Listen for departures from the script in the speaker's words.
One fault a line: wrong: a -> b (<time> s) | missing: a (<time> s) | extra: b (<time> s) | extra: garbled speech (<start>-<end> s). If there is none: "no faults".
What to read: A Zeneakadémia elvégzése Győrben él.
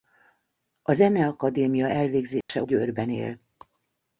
no faults